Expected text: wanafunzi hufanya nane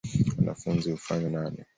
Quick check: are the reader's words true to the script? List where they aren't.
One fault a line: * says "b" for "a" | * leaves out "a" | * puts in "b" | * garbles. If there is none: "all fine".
all fine